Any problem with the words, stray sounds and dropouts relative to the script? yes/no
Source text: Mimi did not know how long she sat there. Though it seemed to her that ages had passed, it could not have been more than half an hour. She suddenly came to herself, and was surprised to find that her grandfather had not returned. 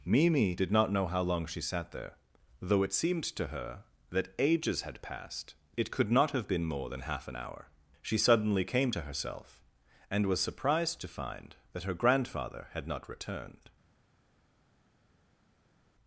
no